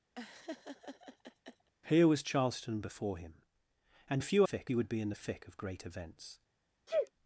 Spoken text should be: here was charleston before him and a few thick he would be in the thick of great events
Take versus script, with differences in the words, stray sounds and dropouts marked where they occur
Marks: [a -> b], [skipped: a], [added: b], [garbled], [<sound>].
[laugh] here was charleston before him and a few thick he would be in the thick of great events [sneeze]